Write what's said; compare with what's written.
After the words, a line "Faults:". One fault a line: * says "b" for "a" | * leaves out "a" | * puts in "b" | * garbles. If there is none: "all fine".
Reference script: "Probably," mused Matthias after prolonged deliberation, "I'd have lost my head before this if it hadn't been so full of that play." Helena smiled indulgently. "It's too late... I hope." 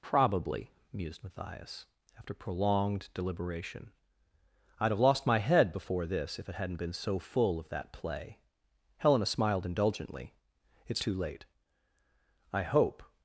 "Probably," mused Matthias after prolonged deliberation, "I'd have lost my head before this if it hadn't been so full of that play." Helena smiled indulgently. "It's too late... I hope."
Faults:
all fine